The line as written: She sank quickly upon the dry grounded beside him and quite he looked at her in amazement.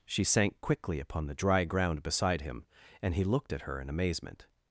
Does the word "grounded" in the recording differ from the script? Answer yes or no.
yes